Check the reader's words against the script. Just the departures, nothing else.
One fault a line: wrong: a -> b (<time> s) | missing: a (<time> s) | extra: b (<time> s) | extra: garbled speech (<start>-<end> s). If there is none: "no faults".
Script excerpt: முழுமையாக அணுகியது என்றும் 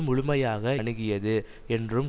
no faults